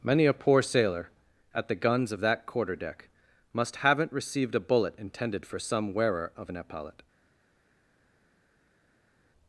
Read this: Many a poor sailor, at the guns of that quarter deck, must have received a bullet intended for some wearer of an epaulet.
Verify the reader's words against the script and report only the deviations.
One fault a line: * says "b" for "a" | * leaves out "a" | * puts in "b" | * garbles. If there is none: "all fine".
* says "haven't" for "have"